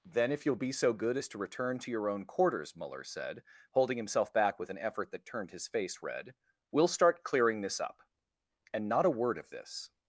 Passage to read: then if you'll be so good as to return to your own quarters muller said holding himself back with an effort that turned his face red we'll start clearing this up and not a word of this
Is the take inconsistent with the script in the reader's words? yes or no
no